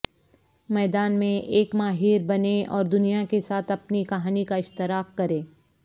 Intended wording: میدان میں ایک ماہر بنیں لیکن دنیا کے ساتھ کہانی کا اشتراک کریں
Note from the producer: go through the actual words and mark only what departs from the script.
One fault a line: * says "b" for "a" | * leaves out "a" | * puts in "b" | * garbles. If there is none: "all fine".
* says "اور" for "لیکن"
* puts in "اپنی"